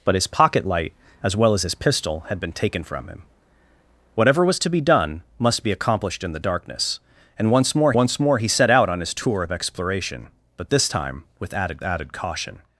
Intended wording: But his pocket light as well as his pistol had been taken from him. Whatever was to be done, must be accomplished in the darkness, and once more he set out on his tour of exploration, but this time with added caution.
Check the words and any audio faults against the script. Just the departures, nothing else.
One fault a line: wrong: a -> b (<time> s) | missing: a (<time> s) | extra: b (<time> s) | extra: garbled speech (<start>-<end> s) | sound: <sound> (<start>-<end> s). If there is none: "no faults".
extra: once more (7.9 s)
extra: added (11.8 s)